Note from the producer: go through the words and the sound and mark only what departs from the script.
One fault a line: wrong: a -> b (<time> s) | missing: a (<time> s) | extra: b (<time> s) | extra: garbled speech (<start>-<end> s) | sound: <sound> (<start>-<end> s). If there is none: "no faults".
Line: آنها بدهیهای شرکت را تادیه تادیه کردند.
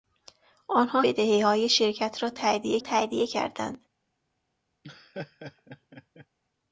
sound: laugh (4.8-6.3 s)